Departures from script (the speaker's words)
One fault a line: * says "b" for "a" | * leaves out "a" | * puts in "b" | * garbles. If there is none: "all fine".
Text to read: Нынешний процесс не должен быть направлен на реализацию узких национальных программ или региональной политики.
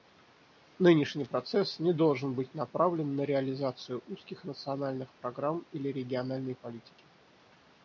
all fine